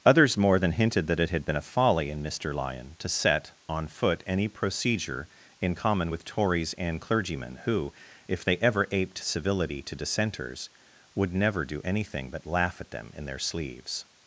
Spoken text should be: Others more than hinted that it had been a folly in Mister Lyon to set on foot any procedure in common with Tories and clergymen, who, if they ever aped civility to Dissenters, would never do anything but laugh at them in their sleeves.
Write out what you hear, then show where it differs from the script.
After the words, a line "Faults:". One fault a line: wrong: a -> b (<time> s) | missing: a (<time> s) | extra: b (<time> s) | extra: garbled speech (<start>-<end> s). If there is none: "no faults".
Others more than hinted that it had been a folly in Mister Lyon to set on foot any procedure in common with Tories and clergymen, who, if they ever aped civility to Dissenters, would never do anything but laugh at them in their sleeves.
Faults:
no faults